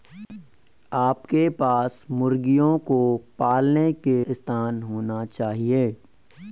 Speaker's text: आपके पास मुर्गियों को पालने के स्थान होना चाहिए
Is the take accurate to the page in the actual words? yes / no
yes